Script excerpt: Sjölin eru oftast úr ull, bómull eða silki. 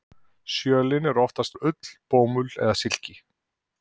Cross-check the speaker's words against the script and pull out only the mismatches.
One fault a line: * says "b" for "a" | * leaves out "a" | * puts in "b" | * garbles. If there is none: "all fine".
all fine